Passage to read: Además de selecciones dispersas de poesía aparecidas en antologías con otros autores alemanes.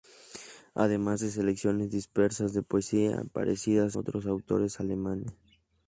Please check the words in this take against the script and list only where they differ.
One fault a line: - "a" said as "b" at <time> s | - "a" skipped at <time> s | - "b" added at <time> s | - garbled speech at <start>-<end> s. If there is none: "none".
- "en antologías con" skipped at 4.0 s